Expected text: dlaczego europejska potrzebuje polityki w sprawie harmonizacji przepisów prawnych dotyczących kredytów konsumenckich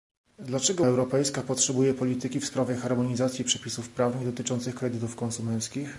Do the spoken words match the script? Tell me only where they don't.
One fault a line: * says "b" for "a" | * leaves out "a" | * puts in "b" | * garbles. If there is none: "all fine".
all fine